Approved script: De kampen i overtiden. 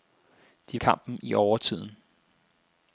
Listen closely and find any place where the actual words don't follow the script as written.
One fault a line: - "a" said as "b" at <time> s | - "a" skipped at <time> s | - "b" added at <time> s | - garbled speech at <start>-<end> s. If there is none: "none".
none